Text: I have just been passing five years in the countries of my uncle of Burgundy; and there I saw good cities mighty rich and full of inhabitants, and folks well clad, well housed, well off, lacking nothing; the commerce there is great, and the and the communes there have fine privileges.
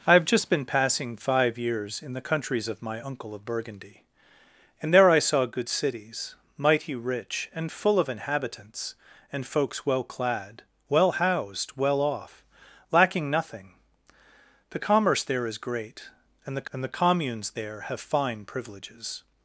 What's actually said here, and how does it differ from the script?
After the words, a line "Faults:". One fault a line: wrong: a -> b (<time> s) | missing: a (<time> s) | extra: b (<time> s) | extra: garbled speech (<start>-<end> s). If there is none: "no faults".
I have just been passing five years in the countries of my uncle of Burgundy; and there I saw good cities mighty rich and full of inhabitants, and folks well clad, well housed, well off, lacking nothing; the commerce there is great, and the and the communes there have fine privileges.
Faults:
no faults